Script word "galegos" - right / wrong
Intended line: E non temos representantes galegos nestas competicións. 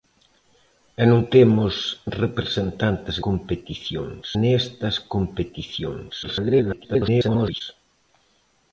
wrong